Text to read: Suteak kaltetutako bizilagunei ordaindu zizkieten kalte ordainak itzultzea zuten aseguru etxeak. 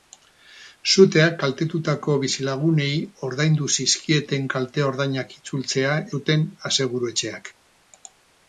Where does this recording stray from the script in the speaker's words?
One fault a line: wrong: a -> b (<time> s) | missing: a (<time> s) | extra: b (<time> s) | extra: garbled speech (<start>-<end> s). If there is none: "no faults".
no faults